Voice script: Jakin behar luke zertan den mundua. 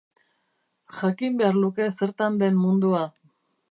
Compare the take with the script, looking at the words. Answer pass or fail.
pass